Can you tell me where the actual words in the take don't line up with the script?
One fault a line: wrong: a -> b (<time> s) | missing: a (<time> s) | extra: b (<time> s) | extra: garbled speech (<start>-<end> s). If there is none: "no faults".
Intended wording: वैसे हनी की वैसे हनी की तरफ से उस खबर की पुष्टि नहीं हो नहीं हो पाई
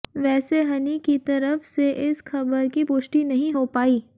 missing: वैसे हनी की (1.2 s)
wrong: उस -> इस (2.1 s)
missing: नहीं हो (3.6 s)